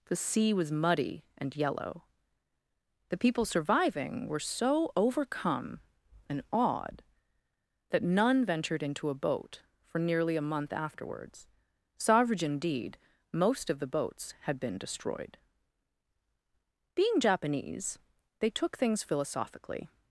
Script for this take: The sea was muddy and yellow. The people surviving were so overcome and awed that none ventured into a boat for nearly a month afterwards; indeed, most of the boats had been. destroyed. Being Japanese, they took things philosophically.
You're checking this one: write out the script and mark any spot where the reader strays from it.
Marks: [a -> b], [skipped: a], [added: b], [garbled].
The sea was muddy and yellow. The people surviving were so overcome and awed that none ventured into a boat for nearly a month afterwards; [added: savage] indeed, most of the boats had been. destroyed. Being Japanese, they took things philosophically.